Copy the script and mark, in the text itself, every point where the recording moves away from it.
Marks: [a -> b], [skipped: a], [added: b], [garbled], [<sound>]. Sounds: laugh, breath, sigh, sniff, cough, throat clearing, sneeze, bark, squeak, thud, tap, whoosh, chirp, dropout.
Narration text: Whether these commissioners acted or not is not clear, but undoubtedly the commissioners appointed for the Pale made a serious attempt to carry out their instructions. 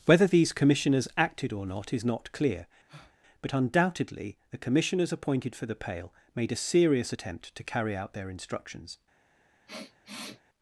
Whether these commissioners acted or not is not clear, [breath] but undoubtedly the commissioners appointed for the Pale made a serious attempt to carry out their instructions. [sniff]